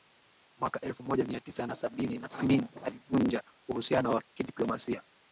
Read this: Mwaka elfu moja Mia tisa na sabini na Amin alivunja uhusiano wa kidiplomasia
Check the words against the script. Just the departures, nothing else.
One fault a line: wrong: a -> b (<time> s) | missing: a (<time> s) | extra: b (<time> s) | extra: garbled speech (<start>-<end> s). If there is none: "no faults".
no faults